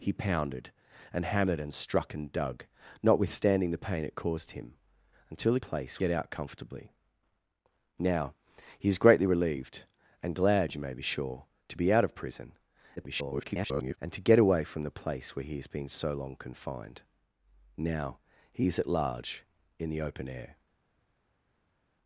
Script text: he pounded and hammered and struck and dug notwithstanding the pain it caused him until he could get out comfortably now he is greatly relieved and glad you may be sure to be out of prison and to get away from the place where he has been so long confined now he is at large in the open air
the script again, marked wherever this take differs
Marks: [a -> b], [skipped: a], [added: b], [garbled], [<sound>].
he pounded and hammered and struck and dug notwithstanding the pain it caused him until he [could -> place] get out comfortably now he is greatly relieved and glad you may be sure to be out of prison [garbled] and to get away from the place where he has been so long confined now he is at large in the open air